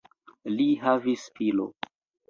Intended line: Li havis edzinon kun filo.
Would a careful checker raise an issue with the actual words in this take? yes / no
yes